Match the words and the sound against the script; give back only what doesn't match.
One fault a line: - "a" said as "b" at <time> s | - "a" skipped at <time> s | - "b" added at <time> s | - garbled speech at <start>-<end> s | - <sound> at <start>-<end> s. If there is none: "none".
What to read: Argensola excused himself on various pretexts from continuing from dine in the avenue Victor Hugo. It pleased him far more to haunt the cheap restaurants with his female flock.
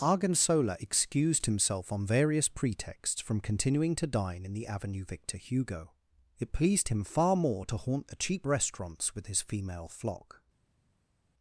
- "from" said as "to" at 3.9 s